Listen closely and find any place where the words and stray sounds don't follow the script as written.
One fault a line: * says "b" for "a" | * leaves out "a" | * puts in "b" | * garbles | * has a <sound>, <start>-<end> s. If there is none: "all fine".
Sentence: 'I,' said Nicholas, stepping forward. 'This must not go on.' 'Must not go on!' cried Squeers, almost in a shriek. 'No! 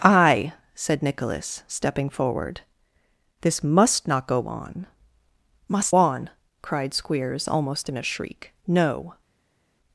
* leaves out "not go"